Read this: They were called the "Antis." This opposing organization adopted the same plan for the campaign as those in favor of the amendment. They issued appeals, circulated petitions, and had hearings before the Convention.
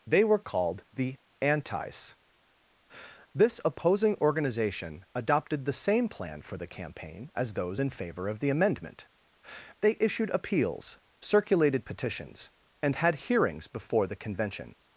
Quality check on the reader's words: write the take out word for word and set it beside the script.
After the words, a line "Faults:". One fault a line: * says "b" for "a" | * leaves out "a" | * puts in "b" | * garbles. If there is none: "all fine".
They were called the "Antis." This opposing organization adopted the same plan for the campaign as those in favor of the amendment. They issued appeals, circulated petitions, and had hearings before the Convention.
Faults:
all fine